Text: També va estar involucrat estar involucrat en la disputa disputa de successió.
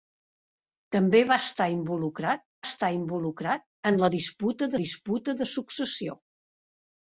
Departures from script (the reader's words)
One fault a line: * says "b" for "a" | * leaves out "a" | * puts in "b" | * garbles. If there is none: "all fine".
all fine